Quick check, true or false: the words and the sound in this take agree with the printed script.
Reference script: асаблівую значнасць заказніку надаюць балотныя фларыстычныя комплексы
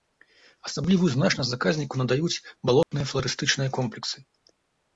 false